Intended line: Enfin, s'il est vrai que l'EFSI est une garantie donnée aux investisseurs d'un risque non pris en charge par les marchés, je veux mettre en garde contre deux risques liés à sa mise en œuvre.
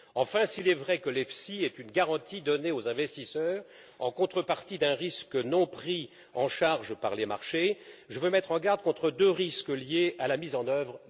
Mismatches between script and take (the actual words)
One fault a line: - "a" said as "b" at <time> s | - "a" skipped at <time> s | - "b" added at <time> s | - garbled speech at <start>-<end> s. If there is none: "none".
- "en contrepartie" added at 4.0 s